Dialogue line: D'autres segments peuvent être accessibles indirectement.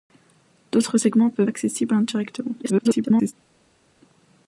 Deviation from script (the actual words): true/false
true